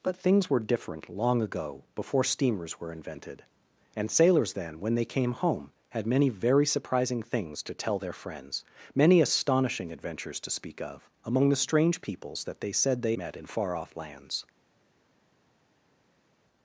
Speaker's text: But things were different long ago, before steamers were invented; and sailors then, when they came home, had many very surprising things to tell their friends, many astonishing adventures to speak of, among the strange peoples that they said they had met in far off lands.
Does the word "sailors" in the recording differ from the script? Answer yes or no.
no